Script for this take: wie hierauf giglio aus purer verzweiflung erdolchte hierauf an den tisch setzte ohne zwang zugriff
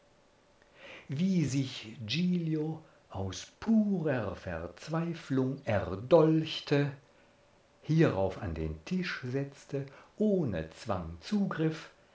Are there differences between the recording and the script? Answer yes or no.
yes